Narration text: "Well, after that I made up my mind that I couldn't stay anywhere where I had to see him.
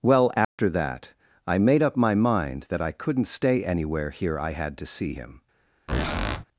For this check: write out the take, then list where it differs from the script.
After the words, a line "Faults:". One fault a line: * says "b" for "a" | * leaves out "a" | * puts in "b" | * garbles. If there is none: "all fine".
"Well, after that I made up my mind that I couldn't stay anywhere here I had to see him.
Faults:
* says "here" for "where"